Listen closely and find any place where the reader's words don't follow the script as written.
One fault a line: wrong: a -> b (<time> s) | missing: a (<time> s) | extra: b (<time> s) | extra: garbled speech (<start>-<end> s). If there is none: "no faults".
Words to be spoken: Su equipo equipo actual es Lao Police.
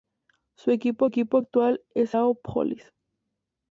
no faults